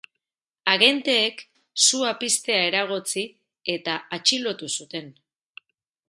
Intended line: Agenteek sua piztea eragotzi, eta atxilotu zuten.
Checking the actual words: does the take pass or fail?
pass